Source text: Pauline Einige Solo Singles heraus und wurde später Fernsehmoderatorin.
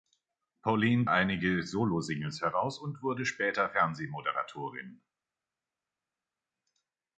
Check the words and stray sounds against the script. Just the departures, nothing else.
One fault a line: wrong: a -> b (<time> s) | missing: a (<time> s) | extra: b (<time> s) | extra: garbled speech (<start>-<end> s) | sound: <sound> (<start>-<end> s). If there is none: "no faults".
no faults